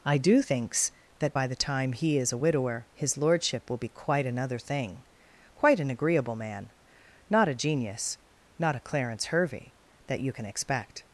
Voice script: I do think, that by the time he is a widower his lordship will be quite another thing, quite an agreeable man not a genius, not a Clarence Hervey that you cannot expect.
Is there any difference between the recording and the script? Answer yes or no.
yes